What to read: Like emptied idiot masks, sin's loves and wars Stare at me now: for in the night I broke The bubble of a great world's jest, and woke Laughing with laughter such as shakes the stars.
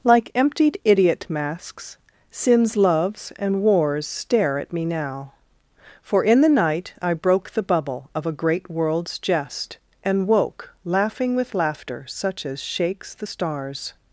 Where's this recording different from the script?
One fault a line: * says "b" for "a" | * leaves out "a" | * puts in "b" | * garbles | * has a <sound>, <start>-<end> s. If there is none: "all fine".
all fine